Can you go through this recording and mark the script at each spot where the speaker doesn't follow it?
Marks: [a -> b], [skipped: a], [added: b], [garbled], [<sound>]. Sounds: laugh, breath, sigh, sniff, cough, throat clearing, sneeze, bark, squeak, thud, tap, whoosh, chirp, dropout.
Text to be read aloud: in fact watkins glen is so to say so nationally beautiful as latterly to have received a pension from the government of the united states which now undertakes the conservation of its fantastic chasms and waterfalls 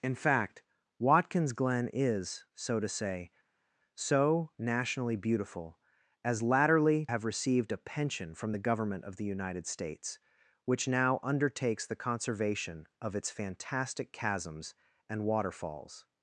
in fact watkins glen is so to say so nationally beautiful as latterly [skipped: to] have received a pension from the government of the united states which now undertakes the conservation of its fantastic chasms and waterfalls